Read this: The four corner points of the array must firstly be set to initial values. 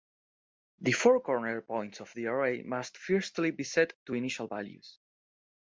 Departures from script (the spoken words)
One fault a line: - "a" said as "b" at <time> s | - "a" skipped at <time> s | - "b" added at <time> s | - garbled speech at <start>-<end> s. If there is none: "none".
none